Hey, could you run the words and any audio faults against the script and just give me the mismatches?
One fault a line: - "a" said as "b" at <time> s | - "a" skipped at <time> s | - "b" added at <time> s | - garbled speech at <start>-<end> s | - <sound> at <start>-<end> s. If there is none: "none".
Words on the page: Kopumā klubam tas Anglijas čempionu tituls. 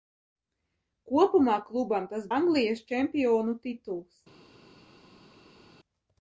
none